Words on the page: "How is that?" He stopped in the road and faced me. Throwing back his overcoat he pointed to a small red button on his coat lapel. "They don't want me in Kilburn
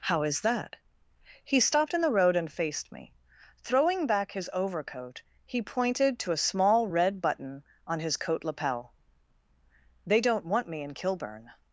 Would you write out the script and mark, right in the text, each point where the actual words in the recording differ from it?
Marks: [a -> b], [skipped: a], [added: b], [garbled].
"How is that?" He stopped in the road and faced me. Throwing back his overcoat he pointed to a small red button on his coat lapel. "They don't want me in Kilburn